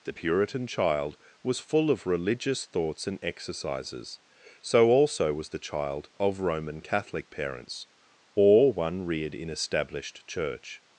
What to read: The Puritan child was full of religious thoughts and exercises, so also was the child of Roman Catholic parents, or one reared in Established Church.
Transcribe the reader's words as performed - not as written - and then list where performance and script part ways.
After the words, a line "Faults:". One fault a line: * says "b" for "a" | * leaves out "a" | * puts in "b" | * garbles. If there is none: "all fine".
The Puritan child was full of religious thoughts and exercises, so also was the child of Roman Catholic parents, or one reared in Established Church.
Faults:
all fine